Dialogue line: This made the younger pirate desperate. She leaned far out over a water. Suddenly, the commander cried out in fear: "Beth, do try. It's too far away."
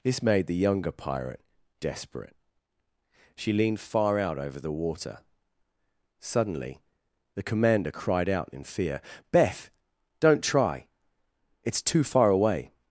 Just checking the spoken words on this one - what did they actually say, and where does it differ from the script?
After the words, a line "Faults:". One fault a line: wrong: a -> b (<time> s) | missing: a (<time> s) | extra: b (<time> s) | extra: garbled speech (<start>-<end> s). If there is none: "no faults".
This made the younger pirate desperate. She leaned far out over the water. Suddenly, the commander cried out in fear: "Beth, don't try. It's too far away."
Faults:
wrong: a -> the (4.6 s)
wrong: do -> don't (10.2 s)